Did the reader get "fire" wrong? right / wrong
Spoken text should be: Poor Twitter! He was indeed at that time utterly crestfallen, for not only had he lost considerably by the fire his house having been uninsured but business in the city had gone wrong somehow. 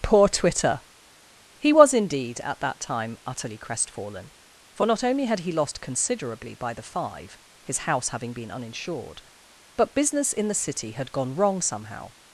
wrong